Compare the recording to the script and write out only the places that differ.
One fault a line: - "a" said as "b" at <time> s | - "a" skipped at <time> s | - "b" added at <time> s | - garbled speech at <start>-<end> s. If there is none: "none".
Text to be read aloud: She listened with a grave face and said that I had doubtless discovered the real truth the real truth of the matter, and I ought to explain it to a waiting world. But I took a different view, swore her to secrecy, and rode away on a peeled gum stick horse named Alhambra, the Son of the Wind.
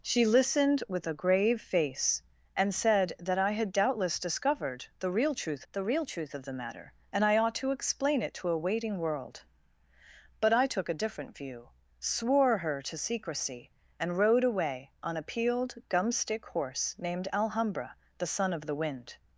none